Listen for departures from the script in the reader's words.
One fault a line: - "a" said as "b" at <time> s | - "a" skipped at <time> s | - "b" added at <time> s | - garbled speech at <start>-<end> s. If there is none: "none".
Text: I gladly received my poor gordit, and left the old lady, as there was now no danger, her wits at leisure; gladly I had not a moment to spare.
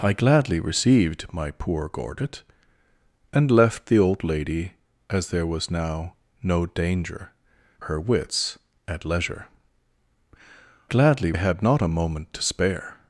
none